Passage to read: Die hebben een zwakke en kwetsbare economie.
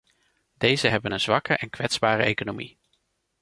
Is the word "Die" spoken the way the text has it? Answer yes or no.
no